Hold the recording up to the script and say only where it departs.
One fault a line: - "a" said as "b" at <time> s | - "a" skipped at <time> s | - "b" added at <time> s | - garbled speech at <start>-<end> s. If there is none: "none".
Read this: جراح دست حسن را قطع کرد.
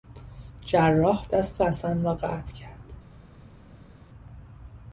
none